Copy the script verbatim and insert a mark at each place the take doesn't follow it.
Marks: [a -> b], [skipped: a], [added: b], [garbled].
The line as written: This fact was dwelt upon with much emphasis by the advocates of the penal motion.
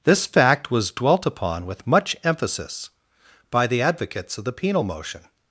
This fact was dwelt upon with much emphasis by the advocates of the penal motion.